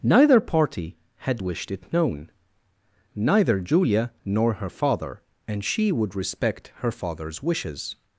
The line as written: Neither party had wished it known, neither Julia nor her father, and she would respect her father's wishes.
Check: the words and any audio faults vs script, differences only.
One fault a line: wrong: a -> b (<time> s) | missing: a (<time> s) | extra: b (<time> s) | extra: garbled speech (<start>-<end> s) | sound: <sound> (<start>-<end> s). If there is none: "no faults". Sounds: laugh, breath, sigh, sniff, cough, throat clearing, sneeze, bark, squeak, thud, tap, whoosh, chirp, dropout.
no faults